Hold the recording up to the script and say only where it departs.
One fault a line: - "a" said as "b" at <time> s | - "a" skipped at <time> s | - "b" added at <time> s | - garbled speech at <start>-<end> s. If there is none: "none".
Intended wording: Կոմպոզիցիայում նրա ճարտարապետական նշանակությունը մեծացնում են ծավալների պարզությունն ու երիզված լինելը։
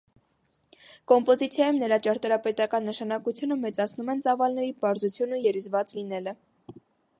none